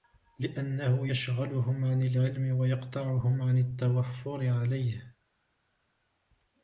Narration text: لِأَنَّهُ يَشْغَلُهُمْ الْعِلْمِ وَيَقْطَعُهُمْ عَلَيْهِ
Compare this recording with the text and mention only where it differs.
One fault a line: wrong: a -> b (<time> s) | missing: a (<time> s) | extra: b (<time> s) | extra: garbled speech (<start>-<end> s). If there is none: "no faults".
extra: عَنْ (1.8 s)
extra: عَنْ التَّوَفُّرِ (3.4 s)